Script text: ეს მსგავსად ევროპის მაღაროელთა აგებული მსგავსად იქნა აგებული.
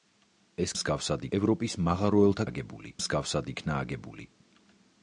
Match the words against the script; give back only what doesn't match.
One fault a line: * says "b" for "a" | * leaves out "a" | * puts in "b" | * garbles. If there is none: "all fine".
all fine